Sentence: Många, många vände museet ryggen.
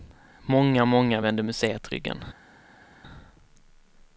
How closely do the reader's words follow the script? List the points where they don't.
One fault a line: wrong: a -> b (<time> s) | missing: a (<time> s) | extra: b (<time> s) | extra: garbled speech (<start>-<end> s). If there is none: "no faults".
no faults